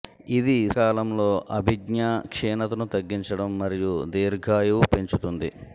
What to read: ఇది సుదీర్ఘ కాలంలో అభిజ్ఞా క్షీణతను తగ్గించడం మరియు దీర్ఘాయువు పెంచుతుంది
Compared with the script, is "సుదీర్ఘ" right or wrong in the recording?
wrong